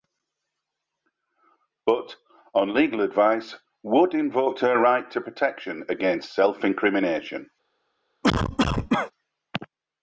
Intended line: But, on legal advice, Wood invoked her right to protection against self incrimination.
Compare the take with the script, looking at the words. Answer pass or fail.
pass